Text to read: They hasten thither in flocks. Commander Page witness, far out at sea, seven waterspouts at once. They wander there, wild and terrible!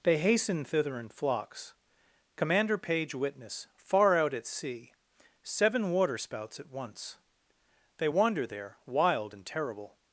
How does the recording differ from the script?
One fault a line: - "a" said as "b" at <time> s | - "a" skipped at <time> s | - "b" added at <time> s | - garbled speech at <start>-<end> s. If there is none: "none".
none